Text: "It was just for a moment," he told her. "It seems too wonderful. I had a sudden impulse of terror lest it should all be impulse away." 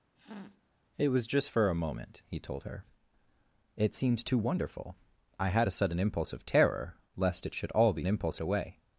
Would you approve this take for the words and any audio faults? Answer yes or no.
no